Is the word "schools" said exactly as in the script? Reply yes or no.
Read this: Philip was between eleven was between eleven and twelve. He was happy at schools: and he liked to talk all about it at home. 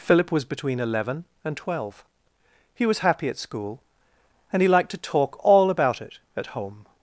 no